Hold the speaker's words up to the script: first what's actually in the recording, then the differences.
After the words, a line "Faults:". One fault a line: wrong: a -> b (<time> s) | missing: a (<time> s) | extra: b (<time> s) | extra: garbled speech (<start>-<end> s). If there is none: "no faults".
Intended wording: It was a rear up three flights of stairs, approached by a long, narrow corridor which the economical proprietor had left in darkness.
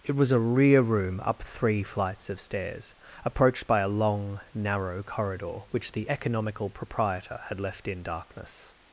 It was a rear room up three flights of stairs, approached by a long, narrow corridor which the economical proprietor had left in darkness.
Faults:
extra: room (0.8 s)